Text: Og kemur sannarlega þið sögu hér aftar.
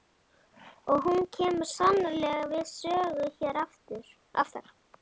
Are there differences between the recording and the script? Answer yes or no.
yes